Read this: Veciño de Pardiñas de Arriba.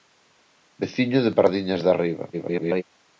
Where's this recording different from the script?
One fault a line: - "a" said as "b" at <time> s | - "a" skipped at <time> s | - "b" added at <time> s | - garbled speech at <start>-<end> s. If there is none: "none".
- garbled speech at 2.3-2.8 s